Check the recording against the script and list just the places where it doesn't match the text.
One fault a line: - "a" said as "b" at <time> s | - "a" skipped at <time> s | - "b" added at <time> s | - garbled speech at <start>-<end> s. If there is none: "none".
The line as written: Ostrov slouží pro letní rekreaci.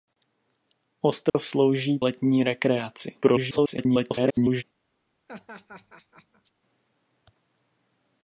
- "pro" skipped at 2.0 s
- garbled speech at 3.2-4.6 s